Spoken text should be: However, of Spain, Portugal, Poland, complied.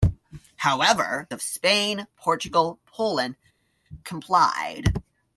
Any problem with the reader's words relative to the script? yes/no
no